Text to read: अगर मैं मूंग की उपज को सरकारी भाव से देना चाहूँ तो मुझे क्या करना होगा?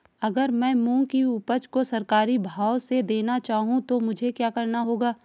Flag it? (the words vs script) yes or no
no